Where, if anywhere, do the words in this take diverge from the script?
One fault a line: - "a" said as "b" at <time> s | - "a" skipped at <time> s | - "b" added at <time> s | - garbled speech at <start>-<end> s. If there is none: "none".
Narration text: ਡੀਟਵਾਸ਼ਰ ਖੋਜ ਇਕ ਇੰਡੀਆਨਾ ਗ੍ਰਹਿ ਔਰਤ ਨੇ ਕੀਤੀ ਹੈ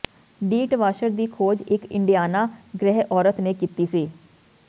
- "ਦੀ" added at 1.1 s
- "ਹੈ" said as "ਸੀ" at 3.8 s